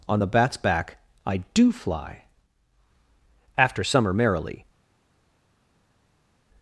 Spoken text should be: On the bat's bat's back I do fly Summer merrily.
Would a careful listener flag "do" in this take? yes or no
no